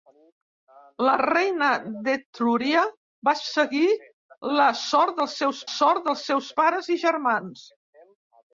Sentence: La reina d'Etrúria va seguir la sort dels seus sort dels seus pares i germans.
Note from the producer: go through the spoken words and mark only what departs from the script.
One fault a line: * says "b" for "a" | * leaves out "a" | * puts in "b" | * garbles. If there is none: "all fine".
all fine